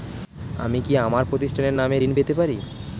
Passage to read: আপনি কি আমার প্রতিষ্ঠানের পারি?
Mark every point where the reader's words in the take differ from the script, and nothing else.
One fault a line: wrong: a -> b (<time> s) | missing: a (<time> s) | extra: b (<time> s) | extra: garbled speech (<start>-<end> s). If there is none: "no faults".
wrong: আপনি -> আমি (0.6 s)
extra: নামে ঋণ পেতে (1.7 s)